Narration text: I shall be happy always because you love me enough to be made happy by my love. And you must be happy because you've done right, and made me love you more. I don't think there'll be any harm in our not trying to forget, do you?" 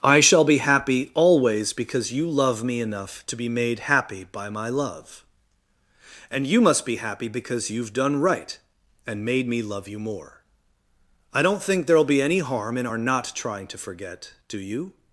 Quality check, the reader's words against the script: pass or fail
pass